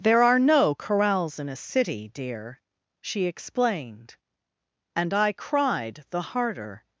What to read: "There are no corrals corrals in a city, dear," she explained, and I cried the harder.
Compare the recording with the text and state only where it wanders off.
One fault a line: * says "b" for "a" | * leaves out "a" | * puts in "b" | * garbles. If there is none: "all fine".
* leaves out "corrals"